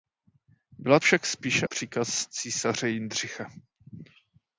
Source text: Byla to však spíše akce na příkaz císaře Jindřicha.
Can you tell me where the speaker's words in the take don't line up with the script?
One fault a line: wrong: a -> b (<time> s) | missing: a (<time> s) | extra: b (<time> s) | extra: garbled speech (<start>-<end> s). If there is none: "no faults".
missing: to (1.0 s)
missing: akce na (1.7 s)